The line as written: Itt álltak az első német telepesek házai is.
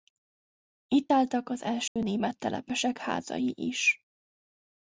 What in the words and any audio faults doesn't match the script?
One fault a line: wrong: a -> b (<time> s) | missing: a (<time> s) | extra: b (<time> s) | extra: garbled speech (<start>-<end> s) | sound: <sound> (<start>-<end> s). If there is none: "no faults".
sound: dropout (1.9-2.0 s)